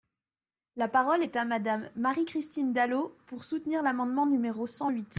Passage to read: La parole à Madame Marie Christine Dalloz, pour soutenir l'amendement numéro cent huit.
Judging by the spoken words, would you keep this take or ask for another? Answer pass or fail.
fail